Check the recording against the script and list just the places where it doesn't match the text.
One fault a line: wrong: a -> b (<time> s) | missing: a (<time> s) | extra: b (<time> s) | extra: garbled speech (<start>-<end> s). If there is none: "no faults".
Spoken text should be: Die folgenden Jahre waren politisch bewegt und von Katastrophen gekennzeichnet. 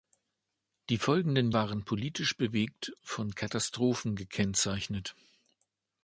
missing: Jahre (1.5 s)
missing: und (2.9 s)